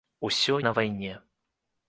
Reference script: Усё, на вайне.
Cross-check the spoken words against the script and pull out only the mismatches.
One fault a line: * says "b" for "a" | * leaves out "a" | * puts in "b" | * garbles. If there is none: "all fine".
all fine